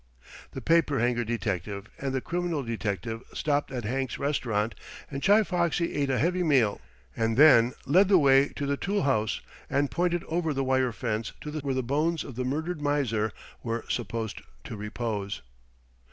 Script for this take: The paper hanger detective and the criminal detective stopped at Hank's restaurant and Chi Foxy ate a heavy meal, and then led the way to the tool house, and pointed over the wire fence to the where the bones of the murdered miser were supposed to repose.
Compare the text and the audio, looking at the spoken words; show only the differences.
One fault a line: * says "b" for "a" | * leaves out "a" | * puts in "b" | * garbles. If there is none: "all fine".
all fine